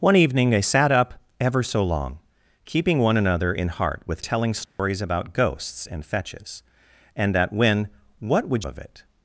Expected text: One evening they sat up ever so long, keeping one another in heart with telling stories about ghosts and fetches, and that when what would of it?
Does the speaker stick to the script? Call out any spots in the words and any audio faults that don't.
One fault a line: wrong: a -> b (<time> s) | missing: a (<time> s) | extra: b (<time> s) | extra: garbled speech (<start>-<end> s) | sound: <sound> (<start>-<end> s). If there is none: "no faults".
sound: dropout (4.7-4.8 s)